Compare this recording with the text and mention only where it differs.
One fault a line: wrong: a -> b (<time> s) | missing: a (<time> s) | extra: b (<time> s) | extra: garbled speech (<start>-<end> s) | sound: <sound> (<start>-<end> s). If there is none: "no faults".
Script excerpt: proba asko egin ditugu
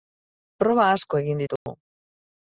sound: dropout (1.6-1.7 s)